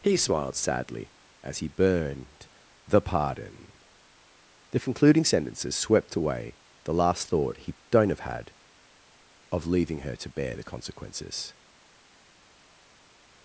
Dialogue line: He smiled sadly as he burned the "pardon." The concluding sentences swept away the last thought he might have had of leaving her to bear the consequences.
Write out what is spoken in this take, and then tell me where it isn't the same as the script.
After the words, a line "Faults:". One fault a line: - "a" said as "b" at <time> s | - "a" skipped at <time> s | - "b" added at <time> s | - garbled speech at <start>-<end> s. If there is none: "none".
He smiled sadly as he burned the "pardon." The concluding sentences swept away the last thought he don't have had of leaving her to bear the consequences.
Faults:
- "might" said as "don't" at 7.9 s